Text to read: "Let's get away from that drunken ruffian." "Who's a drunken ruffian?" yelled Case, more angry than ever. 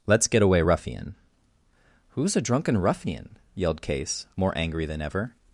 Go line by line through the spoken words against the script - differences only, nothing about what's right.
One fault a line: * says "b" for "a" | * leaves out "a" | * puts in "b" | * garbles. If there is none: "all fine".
* leaves out "from that drunken"